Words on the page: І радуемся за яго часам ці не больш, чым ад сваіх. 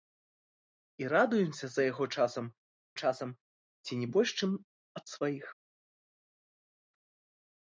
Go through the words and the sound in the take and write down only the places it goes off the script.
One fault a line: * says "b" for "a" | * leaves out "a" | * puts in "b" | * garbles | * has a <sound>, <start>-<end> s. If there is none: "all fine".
* puts in "часам"